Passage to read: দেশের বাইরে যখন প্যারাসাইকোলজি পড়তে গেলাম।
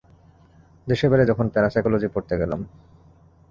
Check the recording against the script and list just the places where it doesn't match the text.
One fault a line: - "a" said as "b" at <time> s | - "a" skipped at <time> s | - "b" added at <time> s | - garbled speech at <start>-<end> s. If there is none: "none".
none